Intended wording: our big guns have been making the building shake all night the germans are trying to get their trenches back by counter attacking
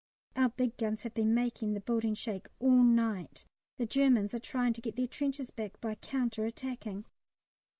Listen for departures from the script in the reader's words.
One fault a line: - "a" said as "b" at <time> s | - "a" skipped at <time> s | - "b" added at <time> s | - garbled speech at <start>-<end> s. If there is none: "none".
none